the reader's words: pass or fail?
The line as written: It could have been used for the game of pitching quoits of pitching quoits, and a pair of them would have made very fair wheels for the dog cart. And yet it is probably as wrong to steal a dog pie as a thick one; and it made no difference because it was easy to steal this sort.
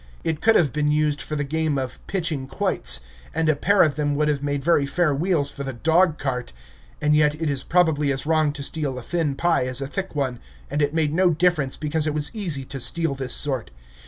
fail